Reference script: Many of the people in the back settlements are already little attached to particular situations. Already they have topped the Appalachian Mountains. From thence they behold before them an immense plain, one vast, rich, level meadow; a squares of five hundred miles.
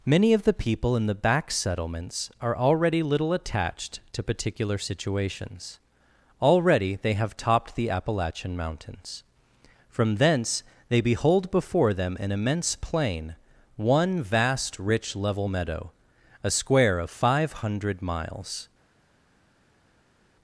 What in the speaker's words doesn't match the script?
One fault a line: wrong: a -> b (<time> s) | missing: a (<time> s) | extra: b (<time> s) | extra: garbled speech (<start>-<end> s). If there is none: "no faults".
wrong: squares -> square (16.5 s)